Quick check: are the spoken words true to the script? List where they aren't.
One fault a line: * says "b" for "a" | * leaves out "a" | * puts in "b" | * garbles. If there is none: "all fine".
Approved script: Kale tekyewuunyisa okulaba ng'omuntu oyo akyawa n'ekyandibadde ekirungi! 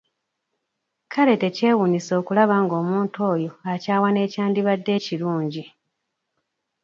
all fine